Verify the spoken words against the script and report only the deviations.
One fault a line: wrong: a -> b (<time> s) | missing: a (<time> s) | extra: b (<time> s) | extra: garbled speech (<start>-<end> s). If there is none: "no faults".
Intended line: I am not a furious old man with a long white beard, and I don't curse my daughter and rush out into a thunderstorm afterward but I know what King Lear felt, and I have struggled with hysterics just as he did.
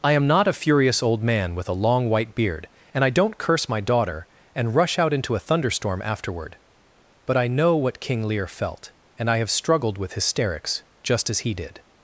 no faults